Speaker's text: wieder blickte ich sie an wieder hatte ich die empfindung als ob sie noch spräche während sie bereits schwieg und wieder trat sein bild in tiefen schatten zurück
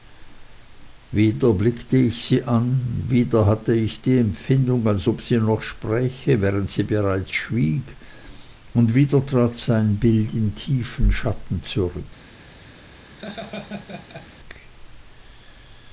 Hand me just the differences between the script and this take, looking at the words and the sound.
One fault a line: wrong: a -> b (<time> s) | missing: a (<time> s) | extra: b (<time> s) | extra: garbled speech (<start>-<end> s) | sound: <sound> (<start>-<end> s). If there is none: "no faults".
sound: laugh (13.2-14.3 s)